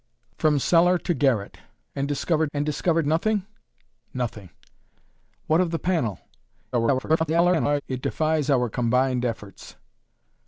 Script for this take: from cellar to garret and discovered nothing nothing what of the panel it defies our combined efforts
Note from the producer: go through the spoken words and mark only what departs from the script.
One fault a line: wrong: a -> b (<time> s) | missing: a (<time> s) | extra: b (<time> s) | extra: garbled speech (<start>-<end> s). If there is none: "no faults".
extra: and discovered (2.5 s)
extra: garbled speech (6.7-7.8 s)